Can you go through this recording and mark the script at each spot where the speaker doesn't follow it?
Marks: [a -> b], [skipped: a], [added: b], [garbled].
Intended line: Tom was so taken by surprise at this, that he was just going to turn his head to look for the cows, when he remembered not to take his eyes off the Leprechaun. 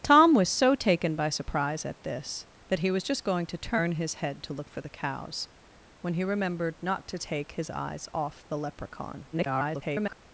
Tom was so taken by surprise at this, that he was just going to turn his head to look for the cows, when he remembered not to take his eyes off the Leprechaun. [garbled]